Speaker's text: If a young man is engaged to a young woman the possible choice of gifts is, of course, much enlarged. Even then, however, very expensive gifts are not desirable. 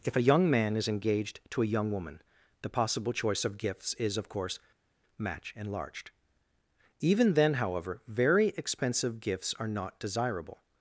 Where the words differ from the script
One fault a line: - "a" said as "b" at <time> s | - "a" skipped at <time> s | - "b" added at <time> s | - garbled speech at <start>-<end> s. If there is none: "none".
- "much" said as "match" at 5.2 s